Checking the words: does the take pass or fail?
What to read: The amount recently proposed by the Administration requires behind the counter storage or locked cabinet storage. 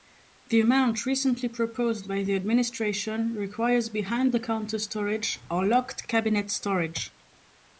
pass